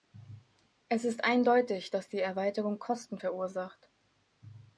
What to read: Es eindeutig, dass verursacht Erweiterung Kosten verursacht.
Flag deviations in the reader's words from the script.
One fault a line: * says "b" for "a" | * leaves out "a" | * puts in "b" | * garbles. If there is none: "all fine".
* puts in "ist"
* says "die" for "verursacht"